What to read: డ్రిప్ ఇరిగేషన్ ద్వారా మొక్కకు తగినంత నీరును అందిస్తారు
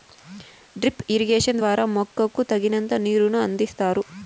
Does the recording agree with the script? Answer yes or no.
yes